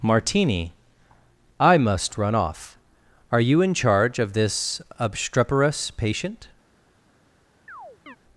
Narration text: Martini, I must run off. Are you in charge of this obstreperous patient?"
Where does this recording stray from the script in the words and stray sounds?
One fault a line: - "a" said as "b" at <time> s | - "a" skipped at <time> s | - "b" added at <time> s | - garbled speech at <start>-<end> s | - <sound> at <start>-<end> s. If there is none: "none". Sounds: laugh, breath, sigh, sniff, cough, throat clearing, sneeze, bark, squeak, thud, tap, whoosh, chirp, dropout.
- chirp at 7.7-8.2 s